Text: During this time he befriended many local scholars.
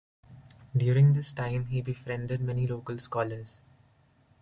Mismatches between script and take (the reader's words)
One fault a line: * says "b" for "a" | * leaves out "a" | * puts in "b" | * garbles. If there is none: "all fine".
all fine